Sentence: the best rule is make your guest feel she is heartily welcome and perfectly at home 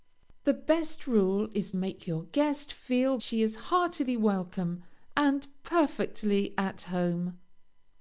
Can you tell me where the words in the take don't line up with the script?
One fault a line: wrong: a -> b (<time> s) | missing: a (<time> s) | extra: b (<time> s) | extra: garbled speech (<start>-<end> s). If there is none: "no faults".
no faults